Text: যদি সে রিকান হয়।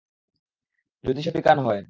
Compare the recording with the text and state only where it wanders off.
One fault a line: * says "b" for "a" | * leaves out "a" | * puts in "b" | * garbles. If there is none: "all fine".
all fine